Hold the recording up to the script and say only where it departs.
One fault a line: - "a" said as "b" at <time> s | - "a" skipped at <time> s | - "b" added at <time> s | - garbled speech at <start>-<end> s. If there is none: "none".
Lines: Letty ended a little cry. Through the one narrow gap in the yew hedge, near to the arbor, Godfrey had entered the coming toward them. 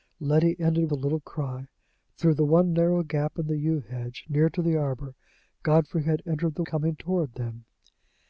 none